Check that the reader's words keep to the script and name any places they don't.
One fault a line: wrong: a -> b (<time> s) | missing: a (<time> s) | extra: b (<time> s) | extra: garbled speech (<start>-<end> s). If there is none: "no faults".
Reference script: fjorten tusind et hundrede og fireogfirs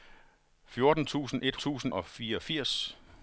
wrong: hundrede -> tusind (1.6 s)